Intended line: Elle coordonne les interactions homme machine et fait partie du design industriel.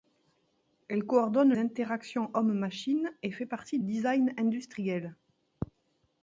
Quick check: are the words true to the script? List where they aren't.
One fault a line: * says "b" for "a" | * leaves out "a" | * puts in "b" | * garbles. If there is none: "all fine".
* leaves out "les"
* leaves out "du"